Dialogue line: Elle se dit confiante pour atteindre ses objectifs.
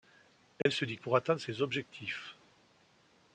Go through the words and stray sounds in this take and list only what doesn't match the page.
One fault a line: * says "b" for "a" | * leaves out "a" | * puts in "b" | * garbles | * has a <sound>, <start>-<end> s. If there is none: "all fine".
* has a dropout, 0.6-0.7 s
* leaves out "confiante"